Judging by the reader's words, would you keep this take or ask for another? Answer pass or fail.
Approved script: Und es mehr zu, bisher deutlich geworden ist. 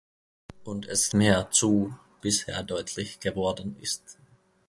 pass